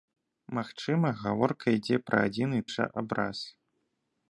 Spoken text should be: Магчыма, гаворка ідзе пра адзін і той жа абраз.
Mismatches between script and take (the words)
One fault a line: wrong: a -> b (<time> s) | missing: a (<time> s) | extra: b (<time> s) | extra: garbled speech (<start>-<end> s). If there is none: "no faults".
missing: той (2.6 s)